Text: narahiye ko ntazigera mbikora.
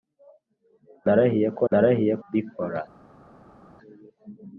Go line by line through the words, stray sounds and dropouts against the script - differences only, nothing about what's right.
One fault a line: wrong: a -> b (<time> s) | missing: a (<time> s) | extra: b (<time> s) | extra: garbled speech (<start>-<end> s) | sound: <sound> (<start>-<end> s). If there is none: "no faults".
wrong: ntazigera -> narahiye (1.7 s)